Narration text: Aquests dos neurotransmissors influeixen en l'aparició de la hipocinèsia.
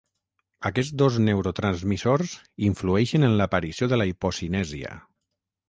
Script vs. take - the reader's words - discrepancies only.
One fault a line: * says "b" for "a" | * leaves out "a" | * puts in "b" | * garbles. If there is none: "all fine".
all fine